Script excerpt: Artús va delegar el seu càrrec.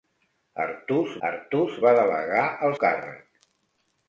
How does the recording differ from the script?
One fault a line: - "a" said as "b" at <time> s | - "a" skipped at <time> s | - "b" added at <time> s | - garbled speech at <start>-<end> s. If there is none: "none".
- "artús" added at 1.3 s
- "seu" skipped at 2.8 s